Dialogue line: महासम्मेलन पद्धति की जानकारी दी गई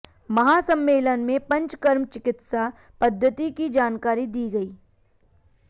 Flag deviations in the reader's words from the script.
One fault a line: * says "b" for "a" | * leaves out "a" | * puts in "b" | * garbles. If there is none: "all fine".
* puts in "में पंचकर्म चिकित्सा"